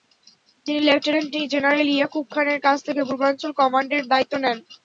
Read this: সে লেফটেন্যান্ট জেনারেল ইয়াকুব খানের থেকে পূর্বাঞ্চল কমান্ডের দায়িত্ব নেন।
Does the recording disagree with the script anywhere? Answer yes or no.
yes